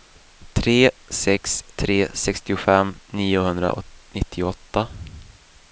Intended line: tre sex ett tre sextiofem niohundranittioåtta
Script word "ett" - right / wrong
wrong